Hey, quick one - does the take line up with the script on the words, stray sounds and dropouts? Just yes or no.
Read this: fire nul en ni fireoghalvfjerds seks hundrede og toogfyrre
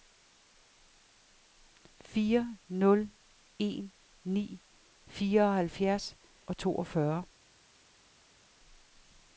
no